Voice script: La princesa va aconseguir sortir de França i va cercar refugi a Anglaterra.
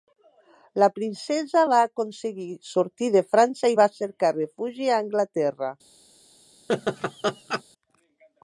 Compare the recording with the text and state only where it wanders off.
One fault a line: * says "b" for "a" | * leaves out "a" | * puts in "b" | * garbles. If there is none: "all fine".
all fine